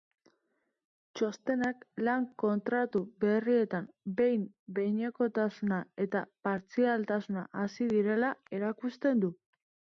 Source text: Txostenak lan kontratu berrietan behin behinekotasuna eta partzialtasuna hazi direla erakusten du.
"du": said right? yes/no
yes